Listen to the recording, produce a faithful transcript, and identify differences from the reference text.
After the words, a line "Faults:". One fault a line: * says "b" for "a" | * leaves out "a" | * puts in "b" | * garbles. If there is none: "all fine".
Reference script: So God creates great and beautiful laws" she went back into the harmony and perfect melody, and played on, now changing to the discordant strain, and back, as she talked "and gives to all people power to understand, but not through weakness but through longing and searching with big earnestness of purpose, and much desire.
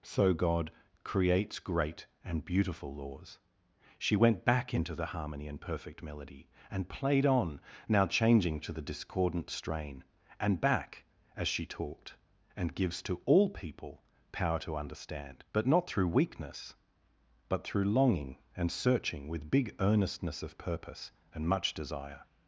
So God creates great and beautiful laws" she went back into the harmony and perfect melody, and played on, now changing to the discordant strain, and back, as she talked "and gives to all people power to understand, but not through weakness but through longing and searching with big earnestness of purpose, and much desire.
Faults:
all fine